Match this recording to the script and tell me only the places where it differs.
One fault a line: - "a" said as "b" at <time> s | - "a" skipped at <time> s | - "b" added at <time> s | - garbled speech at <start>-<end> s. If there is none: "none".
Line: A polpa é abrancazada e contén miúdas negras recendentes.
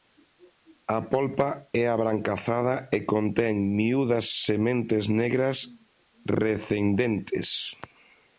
- "sementes" added at 4.5 s